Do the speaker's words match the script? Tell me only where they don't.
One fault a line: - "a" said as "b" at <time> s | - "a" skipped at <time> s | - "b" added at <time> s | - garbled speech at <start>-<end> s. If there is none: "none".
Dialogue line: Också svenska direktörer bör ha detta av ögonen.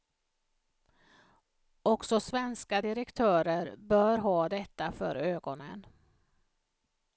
- "av" said as "för" at 4.9 s